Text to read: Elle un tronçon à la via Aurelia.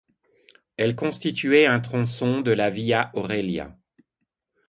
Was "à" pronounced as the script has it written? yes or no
no